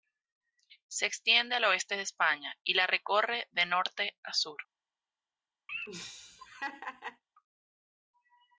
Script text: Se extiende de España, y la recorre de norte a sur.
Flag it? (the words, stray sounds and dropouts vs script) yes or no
yes